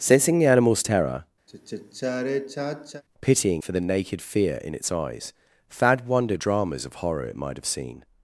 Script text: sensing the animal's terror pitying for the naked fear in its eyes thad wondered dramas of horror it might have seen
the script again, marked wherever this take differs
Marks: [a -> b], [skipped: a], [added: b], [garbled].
sensing the animal's terror pitying for the naked fear in its eyes thad wondered dramas of horror it might have seen